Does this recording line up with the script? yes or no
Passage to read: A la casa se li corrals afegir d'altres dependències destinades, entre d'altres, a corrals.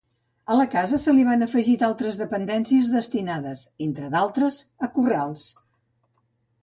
no